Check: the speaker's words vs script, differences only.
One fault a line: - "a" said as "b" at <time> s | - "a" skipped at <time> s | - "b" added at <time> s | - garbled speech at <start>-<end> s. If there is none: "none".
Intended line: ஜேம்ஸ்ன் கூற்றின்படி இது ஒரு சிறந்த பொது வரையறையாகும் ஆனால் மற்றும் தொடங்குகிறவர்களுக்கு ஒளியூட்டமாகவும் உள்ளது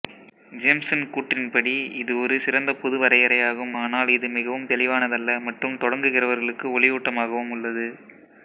- "இது மிகவும் தெளிவானதல்ல" added at 4.2 s